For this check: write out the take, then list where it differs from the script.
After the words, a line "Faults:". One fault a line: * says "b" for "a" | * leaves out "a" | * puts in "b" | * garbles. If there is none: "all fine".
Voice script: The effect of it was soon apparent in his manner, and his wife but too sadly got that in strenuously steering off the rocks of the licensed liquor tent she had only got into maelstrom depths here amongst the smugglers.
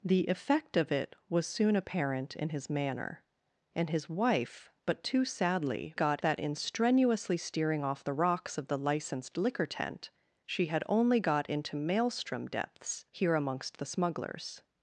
The effect of it was soon apparent in his manner, and his wife but too sadly got that in strenuously steering off the rocks of the licensed liquor tent she had only got into maelstrom depths here amongst the smugglers.
Faults:
all fine